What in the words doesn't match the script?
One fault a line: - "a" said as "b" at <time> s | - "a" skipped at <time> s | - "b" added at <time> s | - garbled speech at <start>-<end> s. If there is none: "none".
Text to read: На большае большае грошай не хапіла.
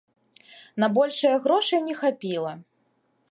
- "большае" skipped at 1.4 s